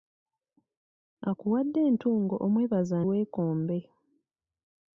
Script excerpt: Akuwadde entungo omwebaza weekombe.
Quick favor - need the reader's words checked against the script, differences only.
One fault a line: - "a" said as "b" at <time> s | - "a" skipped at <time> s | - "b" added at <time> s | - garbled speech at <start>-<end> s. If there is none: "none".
none